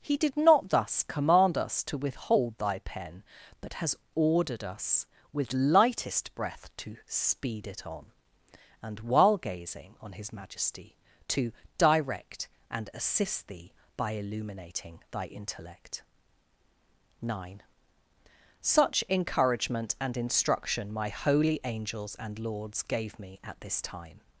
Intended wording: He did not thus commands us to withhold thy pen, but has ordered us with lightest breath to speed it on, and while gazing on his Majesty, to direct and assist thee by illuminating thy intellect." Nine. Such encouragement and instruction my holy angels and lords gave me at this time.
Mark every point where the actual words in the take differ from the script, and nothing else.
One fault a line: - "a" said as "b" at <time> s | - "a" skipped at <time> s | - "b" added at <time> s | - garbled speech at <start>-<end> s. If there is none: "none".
- "commands" said as "command" at 1.0 s